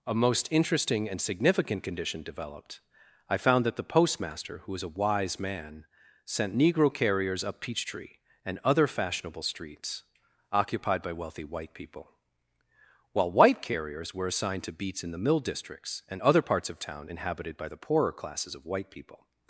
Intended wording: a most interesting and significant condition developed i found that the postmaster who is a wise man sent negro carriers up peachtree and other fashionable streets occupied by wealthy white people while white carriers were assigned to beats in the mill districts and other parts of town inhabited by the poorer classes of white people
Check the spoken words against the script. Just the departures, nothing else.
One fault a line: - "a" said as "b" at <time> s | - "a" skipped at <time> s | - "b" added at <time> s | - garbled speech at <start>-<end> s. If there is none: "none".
- "is" said as "was" at 4.7 s